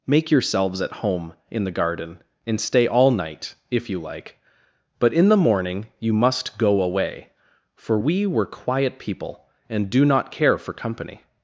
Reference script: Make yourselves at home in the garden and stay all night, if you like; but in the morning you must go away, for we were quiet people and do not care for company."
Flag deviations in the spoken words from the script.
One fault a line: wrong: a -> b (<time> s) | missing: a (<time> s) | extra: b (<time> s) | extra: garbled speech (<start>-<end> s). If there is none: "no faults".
no faults